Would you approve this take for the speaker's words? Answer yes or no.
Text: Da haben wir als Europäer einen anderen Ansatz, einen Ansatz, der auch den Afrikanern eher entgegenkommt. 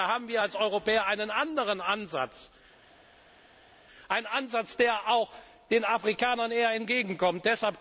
yes